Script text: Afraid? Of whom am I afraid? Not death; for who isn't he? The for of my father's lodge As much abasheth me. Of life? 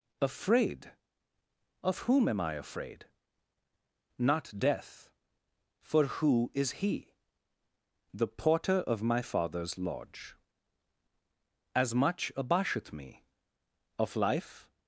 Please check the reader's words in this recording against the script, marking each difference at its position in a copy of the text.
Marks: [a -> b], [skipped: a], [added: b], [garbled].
Afraid? Of whom am I afraid? Not death; for who [isn't -> is] he? The [for -> porter] of my father's lodge As much abasheth me. Of life?